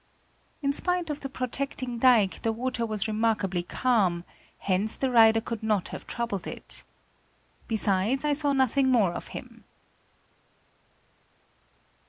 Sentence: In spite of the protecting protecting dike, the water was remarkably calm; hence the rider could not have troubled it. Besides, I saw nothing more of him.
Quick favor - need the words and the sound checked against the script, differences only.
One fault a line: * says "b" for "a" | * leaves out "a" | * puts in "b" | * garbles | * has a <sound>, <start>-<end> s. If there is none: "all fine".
* leaves out "protecting"